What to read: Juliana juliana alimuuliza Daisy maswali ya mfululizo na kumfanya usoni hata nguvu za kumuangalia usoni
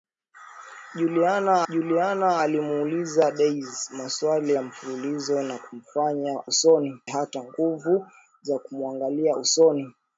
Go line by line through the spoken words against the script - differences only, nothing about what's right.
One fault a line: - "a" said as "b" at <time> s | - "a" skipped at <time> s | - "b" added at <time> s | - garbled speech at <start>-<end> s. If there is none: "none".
none